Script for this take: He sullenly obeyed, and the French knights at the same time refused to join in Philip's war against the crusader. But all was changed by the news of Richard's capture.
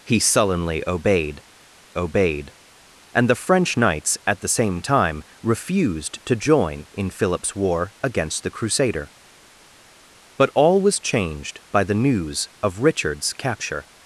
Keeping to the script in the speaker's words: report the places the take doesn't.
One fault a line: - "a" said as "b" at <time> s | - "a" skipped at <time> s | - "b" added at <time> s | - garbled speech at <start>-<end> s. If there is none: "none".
- "obeyed" added at 2.0 s